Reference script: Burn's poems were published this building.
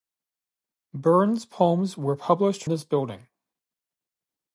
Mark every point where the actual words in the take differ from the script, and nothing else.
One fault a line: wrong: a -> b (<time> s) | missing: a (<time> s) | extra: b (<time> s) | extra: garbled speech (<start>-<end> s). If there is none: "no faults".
no faults